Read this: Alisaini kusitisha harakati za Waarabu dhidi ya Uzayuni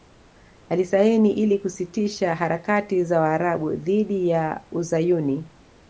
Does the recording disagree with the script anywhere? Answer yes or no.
yes